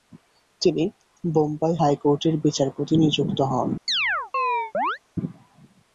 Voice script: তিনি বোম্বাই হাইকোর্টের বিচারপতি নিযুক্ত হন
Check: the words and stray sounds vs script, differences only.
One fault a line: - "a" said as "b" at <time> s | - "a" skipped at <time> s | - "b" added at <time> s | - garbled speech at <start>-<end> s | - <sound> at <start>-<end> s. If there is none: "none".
- chirp at 3.9-5.0 s